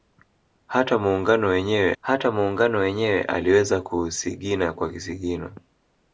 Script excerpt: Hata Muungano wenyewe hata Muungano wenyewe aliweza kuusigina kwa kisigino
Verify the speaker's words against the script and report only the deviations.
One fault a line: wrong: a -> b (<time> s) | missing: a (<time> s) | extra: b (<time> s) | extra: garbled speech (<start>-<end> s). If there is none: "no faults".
no faults